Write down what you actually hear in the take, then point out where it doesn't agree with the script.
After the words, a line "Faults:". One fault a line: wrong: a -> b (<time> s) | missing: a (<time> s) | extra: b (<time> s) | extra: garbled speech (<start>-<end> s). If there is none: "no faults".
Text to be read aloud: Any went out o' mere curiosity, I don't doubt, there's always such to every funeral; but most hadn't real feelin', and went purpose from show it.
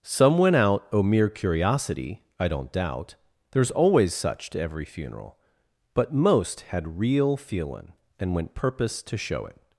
Some went out o' mere curiosity, I don't doubt, there's always such to every funeral; but most had real feelin', and went purpose to show it.
Faults:
wrong: Any -> Some (0.0 s)
wrong: hadn't -> had (6.6 s)
wrong: from -> to (9.0 s)